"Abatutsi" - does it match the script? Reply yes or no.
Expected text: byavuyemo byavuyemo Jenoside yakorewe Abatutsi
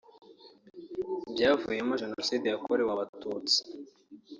yes